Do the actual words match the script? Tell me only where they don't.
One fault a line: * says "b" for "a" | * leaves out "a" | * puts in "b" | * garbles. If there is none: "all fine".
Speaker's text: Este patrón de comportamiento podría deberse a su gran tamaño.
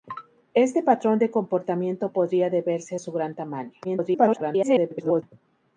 * garbles